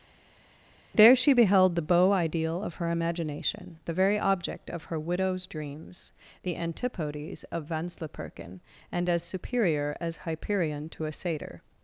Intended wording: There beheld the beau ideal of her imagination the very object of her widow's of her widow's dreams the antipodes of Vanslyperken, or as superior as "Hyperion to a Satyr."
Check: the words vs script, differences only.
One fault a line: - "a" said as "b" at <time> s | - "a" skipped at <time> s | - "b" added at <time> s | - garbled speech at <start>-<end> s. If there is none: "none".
- "she" added at 1.2 s
- "of her widow's" skipped at 5.4 s
- "or" said as "and" at 8.9 s